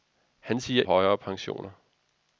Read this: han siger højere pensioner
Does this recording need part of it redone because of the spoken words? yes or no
no